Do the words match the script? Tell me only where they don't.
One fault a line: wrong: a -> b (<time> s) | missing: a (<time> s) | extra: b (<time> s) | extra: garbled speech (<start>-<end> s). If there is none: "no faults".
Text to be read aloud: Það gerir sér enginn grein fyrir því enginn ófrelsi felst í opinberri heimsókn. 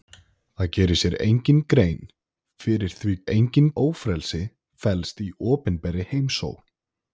no faults